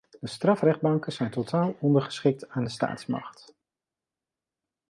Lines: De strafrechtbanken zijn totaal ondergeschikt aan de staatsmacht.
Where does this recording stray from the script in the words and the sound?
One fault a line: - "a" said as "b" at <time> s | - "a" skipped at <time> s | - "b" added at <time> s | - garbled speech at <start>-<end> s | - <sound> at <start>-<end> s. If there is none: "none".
none